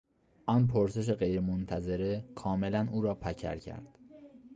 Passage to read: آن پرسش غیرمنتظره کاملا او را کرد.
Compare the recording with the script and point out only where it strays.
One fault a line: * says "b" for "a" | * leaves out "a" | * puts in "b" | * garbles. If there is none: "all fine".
* puts in "پکر"